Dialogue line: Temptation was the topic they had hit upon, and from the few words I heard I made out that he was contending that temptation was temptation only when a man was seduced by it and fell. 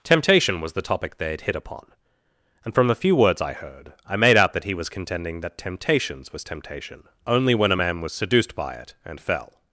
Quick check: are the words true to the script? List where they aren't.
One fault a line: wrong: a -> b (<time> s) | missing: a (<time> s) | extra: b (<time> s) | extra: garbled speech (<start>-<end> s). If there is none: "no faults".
wrong: temptation -> temptations (5.6 s)